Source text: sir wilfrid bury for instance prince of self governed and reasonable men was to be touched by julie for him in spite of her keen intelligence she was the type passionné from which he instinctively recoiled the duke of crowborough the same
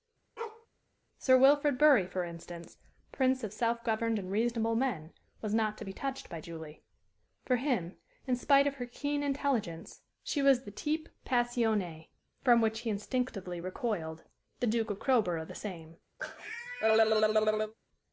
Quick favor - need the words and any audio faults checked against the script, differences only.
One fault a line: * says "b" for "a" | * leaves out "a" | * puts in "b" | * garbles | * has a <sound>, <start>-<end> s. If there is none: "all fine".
* has a bark, 0.4-0.7 s
* puts in "not"
* has a cough, 16.2-17.7 s